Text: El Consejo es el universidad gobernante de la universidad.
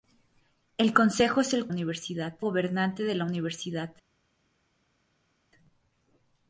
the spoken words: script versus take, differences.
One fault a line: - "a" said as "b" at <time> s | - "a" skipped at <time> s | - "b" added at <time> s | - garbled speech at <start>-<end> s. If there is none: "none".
none